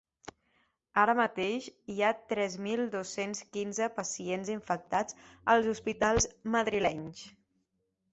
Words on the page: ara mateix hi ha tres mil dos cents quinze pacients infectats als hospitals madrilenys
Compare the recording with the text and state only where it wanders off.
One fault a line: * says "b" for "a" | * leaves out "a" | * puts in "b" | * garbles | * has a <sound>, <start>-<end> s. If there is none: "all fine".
all fine